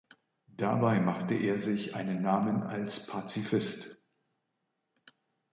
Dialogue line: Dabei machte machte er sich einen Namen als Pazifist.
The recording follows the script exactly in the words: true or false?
false